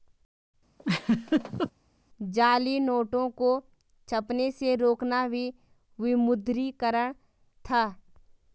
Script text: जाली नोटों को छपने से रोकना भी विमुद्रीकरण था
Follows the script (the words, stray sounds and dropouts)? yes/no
no